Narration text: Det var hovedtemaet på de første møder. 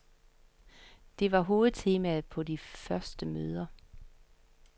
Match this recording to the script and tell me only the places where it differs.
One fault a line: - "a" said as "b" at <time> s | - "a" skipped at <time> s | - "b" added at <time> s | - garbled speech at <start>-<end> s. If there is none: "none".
none